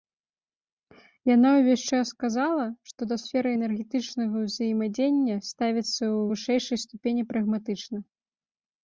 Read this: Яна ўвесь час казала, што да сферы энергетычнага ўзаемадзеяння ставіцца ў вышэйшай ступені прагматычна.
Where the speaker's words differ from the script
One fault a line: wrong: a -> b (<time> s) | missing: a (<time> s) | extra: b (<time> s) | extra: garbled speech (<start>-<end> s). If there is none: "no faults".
no faults